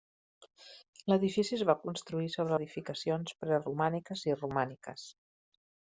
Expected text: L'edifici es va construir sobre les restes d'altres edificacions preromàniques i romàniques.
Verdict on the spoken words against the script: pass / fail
fail